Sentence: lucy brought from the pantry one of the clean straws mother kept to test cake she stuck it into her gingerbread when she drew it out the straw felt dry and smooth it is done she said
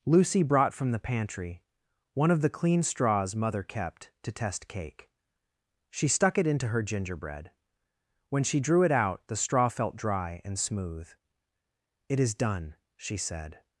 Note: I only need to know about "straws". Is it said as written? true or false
true